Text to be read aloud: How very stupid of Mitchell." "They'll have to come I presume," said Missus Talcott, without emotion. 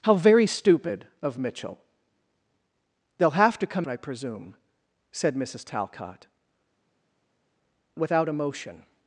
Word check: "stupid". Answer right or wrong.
right